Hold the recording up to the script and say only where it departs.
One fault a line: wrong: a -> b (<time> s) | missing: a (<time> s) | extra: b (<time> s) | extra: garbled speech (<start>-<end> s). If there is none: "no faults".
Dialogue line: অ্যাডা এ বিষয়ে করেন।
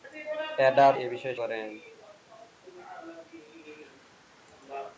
no faults